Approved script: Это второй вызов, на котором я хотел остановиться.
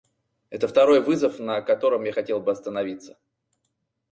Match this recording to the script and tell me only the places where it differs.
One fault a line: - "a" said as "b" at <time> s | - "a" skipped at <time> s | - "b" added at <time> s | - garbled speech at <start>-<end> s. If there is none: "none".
- "бы" added at 2.4 s